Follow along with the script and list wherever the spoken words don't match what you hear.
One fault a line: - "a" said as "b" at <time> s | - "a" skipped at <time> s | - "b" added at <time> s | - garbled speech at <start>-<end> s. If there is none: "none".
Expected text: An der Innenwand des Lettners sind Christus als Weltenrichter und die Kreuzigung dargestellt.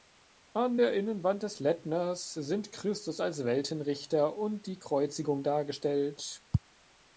none